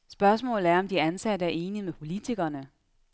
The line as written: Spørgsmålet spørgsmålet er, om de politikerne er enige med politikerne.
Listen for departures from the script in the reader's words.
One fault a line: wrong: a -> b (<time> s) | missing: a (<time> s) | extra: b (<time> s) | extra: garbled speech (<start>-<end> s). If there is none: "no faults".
missing: spørgsmålet (0.7 s)
wrong: politikerne -> ansatte (1.0 s)